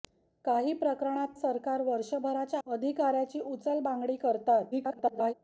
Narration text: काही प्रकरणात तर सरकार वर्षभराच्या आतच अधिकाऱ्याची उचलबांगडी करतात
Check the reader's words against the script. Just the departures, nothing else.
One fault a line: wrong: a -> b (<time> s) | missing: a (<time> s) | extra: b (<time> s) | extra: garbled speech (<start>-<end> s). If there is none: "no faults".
missing: तर (1.3 s)
missing: आतच (2.6 s)
extra: garbled speech (4.7-5.3 s)